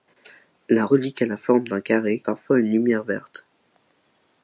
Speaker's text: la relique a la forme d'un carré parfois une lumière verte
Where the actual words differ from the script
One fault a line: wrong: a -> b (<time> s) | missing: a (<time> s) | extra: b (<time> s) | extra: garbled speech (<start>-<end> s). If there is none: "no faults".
no faults